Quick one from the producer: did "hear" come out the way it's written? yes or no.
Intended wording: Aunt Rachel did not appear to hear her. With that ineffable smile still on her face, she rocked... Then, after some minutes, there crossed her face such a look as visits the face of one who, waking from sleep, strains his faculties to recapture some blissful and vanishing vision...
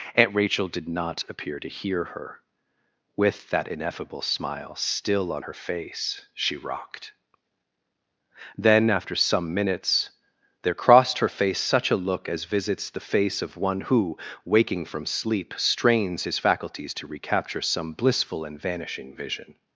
yes